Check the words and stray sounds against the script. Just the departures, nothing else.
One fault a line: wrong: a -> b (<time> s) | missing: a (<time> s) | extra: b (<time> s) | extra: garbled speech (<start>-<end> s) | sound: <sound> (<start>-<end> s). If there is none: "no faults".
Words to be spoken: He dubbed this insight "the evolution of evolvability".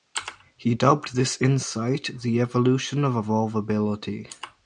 no faults